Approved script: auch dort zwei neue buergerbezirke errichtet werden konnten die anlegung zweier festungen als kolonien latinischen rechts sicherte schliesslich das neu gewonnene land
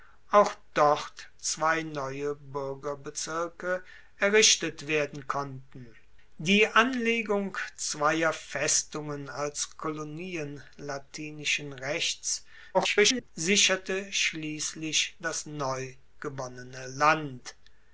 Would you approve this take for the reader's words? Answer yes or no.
no